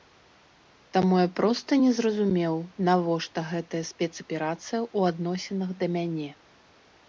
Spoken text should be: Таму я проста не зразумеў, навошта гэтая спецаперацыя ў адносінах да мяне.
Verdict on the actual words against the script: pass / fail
pass